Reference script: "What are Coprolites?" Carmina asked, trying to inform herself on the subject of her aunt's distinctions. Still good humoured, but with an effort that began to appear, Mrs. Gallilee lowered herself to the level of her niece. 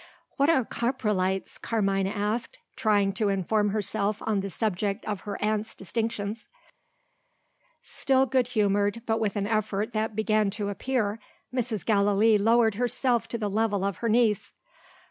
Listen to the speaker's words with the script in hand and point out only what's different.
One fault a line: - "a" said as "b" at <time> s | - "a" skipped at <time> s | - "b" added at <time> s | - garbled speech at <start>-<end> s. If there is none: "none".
none